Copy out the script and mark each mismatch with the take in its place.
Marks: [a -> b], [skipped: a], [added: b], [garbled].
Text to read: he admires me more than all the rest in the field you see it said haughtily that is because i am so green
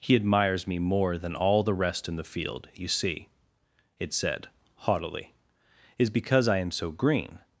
he admires me more than all the rest in the field you see it said haughtily [skipped: that] is because i am so green